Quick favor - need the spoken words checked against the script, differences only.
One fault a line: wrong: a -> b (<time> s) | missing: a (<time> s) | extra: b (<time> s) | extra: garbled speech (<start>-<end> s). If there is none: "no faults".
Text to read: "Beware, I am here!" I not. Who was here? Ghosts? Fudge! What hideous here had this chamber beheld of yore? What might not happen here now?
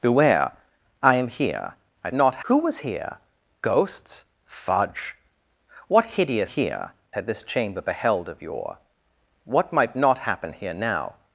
no faults